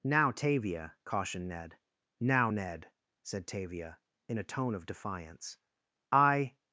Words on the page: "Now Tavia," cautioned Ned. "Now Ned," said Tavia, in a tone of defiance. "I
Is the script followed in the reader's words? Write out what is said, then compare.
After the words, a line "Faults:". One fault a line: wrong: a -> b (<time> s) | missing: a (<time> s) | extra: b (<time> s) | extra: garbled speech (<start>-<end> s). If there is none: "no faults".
"Now Tavia," cautioned Ned. "Now Ned," said Tavia, in a tone of defiance. "I
Faults:
no faults